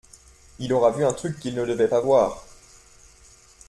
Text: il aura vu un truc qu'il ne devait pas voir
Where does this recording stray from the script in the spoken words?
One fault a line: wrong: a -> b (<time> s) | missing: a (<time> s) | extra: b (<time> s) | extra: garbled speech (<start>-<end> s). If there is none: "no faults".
no faults